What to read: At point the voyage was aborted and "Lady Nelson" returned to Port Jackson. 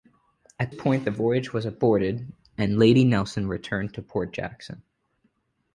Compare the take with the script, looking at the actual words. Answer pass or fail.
pass